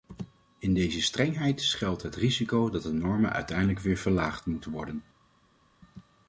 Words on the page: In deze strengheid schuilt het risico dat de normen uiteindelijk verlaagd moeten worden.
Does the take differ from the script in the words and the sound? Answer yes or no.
yes